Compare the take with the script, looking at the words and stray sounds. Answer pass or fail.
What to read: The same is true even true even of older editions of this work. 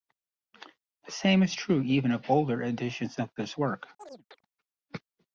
fail